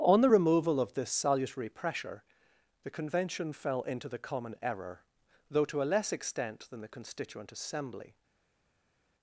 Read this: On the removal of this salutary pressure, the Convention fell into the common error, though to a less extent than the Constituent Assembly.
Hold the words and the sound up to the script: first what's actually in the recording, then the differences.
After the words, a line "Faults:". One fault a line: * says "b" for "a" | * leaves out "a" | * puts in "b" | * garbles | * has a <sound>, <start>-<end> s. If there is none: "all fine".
On the removal of this salutary pressure, the Convention fell into the common error, though to a less extent than the Constituent Assembly.
Faults:
all fine